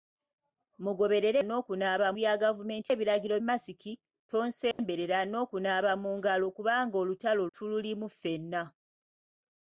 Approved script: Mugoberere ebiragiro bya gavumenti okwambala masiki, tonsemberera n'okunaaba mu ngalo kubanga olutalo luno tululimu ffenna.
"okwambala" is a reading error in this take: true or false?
true